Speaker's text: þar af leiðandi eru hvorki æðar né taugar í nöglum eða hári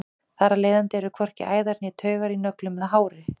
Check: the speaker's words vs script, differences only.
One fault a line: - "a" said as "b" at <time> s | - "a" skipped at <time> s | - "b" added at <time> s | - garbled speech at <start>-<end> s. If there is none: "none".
none